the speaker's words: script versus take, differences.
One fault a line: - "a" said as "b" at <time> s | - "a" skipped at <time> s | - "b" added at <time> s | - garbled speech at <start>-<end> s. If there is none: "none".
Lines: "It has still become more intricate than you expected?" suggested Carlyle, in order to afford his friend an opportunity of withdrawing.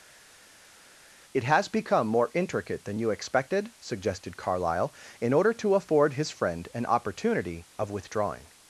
- "still" skipped at 1.7 s